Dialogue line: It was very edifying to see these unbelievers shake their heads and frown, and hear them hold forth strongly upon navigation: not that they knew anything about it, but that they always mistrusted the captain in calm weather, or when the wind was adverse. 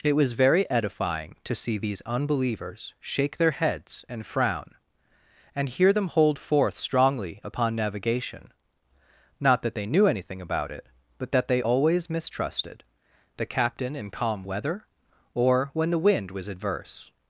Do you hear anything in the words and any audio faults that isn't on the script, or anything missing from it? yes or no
no